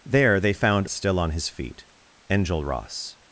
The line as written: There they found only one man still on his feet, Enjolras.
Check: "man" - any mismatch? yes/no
yes